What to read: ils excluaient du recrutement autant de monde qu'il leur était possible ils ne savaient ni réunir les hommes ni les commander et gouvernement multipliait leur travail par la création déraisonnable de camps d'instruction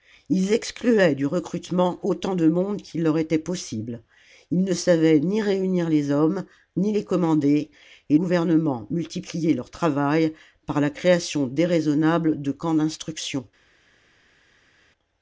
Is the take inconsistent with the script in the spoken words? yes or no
no